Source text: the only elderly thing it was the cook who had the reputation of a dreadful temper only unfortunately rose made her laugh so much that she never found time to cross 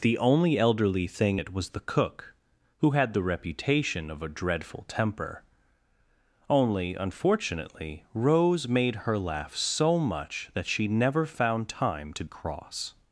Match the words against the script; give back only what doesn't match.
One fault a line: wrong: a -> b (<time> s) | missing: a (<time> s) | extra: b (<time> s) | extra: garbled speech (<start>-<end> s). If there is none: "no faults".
no faults